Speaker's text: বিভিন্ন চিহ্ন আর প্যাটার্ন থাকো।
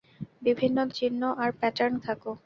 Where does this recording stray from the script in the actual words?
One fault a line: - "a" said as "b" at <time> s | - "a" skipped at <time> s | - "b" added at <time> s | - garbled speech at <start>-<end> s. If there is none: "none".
none